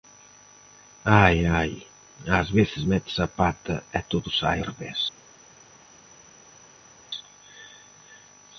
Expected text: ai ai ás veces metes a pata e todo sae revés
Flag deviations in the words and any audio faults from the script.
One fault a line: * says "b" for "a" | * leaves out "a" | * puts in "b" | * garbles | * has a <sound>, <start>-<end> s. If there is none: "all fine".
all fine